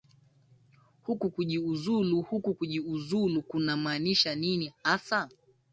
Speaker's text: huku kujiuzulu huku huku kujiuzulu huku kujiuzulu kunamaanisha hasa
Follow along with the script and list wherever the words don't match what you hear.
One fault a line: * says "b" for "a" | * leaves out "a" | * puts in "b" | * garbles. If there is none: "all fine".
* leaves out "huku"
* says "kunamaanisha nini" for "huku kujiuzulu kunamaanisha"